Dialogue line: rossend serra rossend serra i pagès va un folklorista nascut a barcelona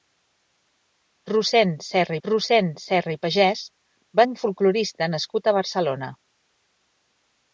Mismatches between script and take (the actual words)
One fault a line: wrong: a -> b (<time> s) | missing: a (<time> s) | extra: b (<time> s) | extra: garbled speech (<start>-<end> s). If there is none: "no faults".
no faults